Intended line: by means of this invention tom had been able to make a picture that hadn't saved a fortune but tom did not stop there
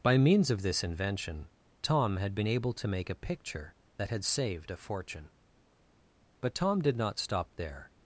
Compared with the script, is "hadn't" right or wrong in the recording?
wrong